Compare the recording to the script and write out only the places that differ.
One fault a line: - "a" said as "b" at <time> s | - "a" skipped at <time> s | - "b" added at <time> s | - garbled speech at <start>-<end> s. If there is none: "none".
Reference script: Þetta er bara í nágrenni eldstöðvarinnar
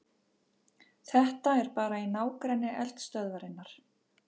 none